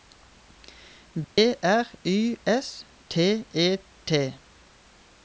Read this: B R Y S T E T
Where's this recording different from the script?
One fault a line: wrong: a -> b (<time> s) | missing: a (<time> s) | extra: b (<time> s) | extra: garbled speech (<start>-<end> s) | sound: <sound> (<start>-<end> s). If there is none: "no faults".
sound: dropout (1.2-1.4 s)